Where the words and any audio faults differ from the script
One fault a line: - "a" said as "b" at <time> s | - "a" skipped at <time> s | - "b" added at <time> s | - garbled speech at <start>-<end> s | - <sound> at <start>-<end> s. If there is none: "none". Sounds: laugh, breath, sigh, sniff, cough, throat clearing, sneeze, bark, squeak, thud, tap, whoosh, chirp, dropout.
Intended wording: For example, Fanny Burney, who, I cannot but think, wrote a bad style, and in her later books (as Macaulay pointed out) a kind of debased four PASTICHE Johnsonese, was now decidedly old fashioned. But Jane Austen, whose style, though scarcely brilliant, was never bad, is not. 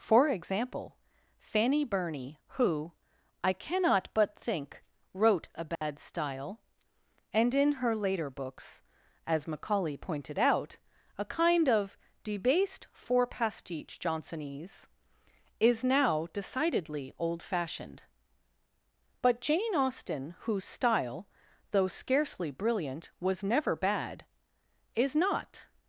- dropout at 5.8-5.8 s
- "was" said as "is" at 15.6 s